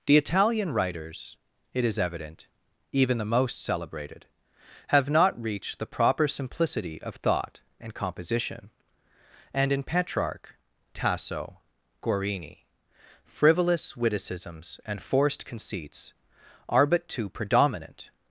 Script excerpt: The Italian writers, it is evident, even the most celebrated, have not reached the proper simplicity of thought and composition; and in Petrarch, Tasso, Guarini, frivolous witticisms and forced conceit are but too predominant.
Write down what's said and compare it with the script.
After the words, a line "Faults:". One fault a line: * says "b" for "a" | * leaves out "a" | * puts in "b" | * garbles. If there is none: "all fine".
The Italian writers, it is evident, even the most celebrated, have not reached the proper simplicity of thought and composition; and in Petrarch, Tasso, Guarini, frivolous witticisms and forced conceits are but too predominant.
Faults:
* says "conceits" for "conceit"